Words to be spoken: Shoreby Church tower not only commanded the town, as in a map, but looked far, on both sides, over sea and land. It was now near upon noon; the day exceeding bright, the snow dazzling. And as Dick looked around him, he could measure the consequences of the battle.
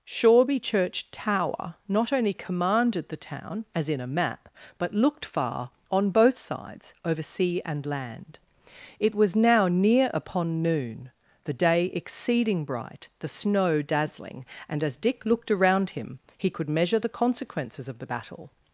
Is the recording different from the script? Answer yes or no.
no